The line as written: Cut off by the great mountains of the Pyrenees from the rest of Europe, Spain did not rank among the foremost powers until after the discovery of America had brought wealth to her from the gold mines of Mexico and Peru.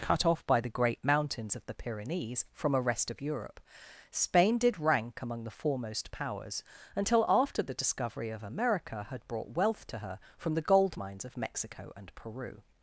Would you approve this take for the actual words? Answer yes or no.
no